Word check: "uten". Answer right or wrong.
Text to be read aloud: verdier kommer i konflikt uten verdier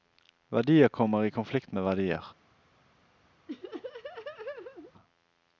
wrong